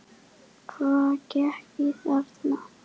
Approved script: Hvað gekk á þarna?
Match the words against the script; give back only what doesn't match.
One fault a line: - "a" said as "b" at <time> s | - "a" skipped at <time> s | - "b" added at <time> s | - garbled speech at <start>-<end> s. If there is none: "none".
none